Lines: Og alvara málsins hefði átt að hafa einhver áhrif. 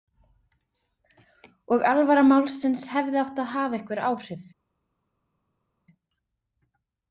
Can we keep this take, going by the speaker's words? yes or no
yes